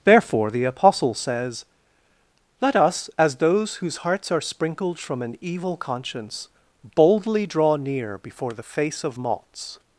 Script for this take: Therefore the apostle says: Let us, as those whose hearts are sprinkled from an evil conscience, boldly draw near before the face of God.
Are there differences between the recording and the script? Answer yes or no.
yes